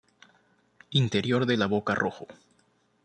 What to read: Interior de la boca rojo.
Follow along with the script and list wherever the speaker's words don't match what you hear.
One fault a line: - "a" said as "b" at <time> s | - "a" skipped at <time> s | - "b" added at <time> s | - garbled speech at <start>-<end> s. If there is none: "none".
none